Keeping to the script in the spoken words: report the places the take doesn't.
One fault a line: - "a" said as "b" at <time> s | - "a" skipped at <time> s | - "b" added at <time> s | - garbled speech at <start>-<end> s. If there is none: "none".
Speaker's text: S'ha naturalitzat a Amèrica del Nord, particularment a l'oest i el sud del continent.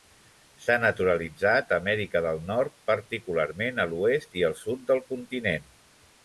none